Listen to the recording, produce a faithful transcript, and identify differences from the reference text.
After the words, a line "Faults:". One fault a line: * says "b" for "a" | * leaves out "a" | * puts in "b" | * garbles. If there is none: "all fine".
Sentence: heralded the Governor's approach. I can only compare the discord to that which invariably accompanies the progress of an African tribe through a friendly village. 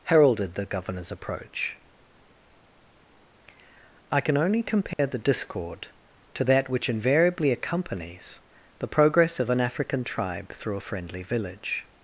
heralded the Governor's approach. I can only compare the discord to that which invariably accompanies the progress of an African tribe through a friendly village.
Faults:
all fine